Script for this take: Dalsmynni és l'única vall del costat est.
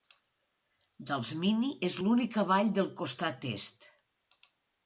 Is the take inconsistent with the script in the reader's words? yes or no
no